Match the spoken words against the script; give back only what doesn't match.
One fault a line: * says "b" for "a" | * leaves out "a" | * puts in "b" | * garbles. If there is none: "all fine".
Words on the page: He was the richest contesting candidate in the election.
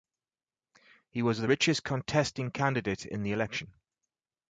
all fine